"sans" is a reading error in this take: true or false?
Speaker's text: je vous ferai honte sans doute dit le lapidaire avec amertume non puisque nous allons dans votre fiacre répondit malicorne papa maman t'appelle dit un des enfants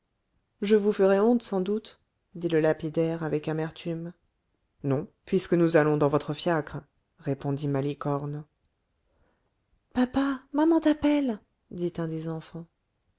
false